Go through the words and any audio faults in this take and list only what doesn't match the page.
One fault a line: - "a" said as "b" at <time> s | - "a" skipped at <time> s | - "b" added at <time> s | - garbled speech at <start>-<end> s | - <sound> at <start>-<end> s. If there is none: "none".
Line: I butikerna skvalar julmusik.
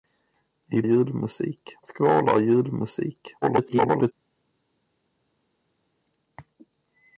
- "butikerna" said as "julmusik" at 0.8 s
- garbled speech at 3.4-4.1 s